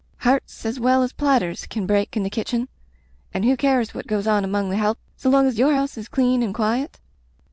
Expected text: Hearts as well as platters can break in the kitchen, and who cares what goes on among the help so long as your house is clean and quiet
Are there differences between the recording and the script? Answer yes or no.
no